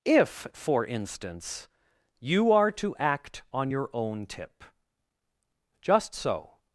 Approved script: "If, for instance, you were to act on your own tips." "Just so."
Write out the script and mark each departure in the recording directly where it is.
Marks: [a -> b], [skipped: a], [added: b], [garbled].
"If, for instance, you [were -> are] to act on your own [tips." -> tip] "Just so."